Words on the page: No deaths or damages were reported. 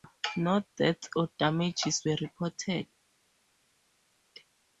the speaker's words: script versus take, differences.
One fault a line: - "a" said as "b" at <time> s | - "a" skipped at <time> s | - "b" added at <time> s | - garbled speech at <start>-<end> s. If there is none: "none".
none